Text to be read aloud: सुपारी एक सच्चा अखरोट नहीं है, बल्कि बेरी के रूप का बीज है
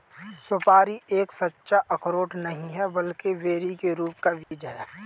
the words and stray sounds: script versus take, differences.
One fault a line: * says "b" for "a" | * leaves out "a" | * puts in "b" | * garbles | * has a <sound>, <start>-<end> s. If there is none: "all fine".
* has a dropout, 4.4-4.5 s